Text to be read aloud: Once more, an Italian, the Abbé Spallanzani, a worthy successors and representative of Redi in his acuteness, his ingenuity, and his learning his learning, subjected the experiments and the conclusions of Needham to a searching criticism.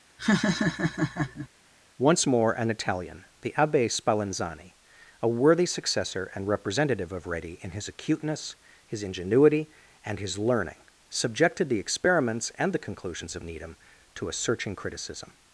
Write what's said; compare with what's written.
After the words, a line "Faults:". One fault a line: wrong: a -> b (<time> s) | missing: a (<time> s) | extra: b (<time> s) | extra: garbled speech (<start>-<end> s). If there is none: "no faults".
Once more, an Italian, the Abbé Spallanzani, a worthy successor and representative of Redi in his acuteness, his ingenuity, and his learning, subjected the experiments and the conclusions of Needham to a searching criticism.
Faults:
wrong: successors -> successor (5.7 s)
missing: his learning (10.8 s)